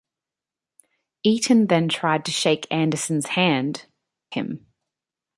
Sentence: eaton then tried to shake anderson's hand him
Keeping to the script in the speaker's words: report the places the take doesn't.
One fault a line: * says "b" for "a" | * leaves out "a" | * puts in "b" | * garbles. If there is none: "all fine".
all fine